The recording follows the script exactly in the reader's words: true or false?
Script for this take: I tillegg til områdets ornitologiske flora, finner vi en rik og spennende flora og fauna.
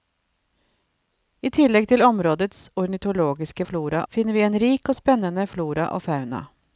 true